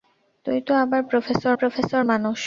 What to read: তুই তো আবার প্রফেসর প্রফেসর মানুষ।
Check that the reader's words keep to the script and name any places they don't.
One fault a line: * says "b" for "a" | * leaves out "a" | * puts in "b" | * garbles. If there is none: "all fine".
all fine